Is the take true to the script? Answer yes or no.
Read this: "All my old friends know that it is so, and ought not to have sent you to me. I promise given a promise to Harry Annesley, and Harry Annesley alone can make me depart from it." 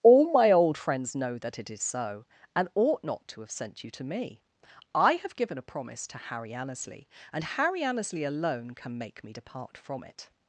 no